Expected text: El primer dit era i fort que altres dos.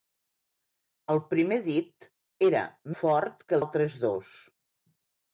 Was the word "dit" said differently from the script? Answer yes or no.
no